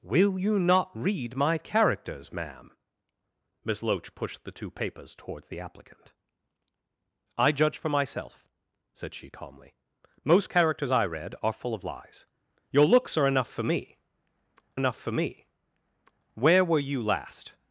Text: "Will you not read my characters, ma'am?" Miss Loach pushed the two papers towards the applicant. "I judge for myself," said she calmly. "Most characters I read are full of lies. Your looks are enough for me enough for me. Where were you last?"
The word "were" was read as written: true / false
true